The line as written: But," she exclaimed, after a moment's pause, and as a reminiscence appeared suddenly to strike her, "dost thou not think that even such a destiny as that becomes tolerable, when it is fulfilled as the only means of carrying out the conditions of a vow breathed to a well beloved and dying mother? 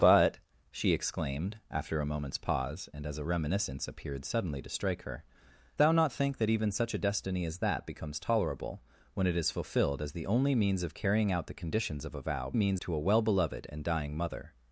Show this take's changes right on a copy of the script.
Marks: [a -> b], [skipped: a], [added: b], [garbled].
But," she exclaimed, after a moment's pause, and as a reminiscence appeared suddenly to strike her, [skipped: "dost] thou not think that even such a destiny as that becomes tolerable, when it is fulfilled as the only means of carrying out the conditions of a vow [breathed -> means] to a well beloved and dying mother?